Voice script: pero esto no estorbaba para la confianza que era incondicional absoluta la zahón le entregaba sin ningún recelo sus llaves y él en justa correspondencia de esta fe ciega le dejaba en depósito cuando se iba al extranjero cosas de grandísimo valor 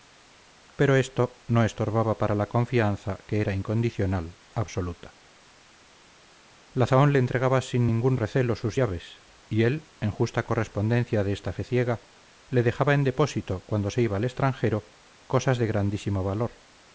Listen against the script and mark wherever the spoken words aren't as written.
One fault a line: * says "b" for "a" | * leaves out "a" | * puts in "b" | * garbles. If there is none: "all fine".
all fine